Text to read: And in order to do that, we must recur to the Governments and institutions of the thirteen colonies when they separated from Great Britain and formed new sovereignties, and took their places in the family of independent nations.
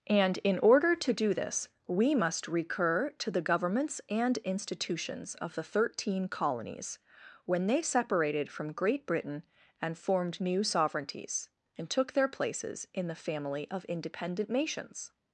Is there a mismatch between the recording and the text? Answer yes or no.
yes